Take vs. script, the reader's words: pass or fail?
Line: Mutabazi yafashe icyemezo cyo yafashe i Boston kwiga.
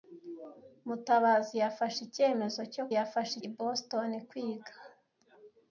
pass